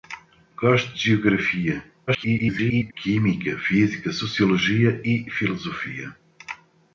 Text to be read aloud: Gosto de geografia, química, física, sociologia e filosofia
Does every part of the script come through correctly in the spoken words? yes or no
no